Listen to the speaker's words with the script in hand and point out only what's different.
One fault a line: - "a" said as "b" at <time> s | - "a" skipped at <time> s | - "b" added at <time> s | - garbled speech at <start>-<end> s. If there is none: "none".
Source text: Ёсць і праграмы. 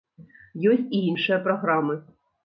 - "іншыя" added at 1.1 s